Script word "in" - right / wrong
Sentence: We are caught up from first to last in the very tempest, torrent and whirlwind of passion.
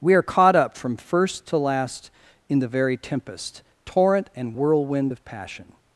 right